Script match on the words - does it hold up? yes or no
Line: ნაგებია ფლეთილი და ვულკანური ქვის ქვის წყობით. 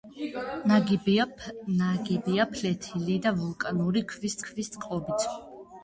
yes